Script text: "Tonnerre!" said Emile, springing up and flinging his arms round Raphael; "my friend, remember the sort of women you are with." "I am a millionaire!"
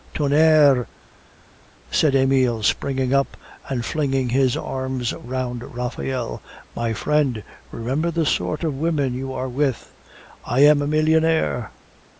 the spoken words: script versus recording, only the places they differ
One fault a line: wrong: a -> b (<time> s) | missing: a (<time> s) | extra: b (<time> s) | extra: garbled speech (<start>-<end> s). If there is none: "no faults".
no faults